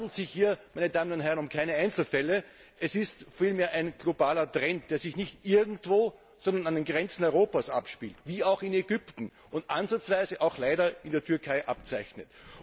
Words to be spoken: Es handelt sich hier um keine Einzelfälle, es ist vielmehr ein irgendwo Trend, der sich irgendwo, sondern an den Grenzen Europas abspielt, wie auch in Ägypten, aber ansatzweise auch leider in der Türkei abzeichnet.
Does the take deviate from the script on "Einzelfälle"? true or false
false